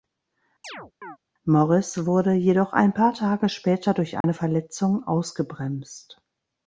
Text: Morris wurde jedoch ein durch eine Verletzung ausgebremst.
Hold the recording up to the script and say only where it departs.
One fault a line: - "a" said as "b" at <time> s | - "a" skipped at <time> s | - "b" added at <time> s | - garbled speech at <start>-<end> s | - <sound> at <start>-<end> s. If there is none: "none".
- chirp at 0.6-1.2 s
- "paar Tage später" added at 2.9 s
- dropout at 4.2-4.2 s